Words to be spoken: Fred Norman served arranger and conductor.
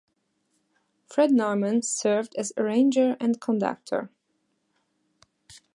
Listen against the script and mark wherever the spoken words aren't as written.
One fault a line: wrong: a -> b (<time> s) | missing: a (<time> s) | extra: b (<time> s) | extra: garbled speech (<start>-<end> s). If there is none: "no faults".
extra: as (2.4 s)